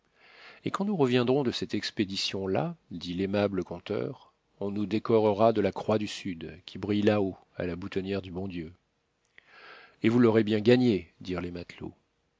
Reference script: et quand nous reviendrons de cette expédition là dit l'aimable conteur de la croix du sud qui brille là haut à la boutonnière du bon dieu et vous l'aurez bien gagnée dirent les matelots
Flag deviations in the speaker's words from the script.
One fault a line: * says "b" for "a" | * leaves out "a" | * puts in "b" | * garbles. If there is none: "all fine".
* puts in "on nous décorera"